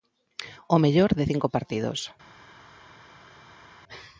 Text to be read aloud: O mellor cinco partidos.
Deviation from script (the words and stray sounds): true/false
true